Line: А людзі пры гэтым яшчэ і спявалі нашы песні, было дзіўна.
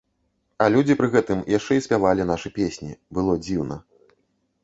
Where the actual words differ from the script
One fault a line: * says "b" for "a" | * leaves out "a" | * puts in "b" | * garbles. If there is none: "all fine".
all fine